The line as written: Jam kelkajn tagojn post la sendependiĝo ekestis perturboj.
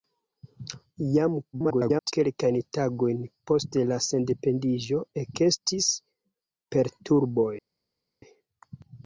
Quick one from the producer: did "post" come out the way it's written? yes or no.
yes